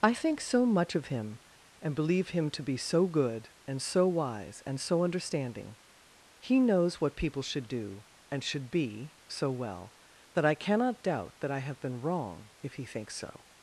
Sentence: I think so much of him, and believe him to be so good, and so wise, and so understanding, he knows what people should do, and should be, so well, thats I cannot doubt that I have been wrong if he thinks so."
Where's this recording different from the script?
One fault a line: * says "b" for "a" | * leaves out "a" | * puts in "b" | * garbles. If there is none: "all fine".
* says "that" for "thats"